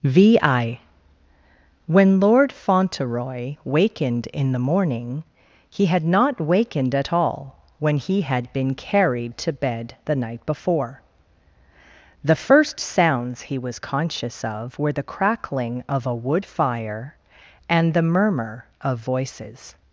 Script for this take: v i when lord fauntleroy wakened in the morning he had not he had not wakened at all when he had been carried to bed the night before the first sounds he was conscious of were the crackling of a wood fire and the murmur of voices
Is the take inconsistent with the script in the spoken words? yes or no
yes